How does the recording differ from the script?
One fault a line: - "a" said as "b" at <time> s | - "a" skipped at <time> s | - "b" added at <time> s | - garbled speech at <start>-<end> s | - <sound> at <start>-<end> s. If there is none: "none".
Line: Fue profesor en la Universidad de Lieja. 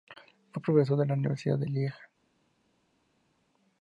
none